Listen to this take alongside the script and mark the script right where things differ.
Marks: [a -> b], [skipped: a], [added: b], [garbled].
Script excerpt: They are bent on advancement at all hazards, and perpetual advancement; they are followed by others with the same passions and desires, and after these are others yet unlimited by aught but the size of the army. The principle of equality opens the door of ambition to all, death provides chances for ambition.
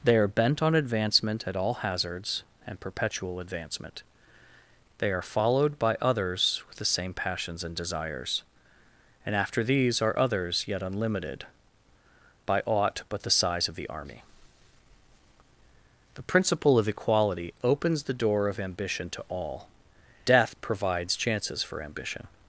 They are bent on advancement at all hazards, and perpetual advancement; they are followed by others with the same passions and desires, and after these are others yet unlimited by aught but the size of the army. The principle of equality opens the door of ambition to all, death provides chances for ambition.